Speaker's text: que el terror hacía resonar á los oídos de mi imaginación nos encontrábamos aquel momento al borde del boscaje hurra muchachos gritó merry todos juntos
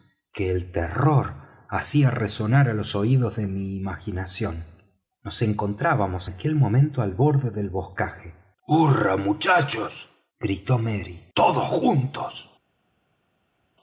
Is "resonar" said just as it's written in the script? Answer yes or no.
yes